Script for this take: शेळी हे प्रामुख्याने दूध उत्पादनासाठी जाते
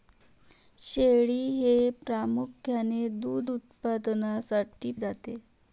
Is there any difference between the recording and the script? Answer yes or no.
no